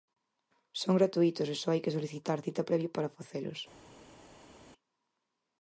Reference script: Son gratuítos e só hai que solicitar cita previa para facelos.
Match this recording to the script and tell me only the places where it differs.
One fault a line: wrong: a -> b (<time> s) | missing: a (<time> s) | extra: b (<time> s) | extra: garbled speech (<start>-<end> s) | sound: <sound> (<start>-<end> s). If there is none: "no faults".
no faults